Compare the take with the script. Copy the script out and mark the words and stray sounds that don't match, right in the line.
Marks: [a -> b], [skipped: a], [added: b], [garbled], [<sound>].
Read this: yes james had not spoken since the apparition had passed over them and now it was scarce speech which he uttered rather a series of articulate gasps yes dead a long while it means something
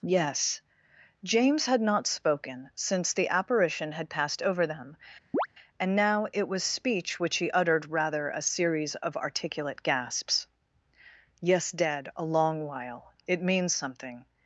yes james had not spoken since the apparition had passed over them [chirp] and now it was [skipped: scarce] speech which he uttered rather a series of articulate gasps yes dead a long while it means something